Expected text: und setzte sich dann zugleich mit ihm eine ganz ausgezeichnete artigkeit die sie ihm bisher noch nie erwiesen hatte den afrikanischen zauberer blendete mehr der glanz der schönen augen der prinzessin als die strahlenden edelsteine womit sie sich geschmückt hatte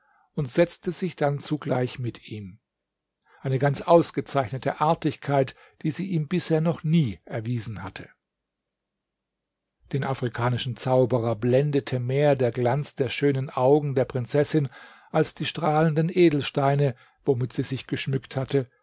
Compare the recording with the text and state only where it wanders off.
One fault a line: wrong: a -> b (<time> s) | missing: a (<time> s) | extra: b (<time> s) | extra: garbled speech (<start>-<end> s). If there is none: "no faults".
no faults